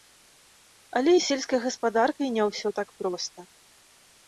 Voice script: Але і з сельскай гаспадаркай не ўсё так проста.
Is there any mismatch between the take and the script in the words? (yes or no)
no